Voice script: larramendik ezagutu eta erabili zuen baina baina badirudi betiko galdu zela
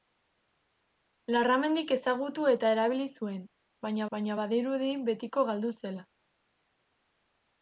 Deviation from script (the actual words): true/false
false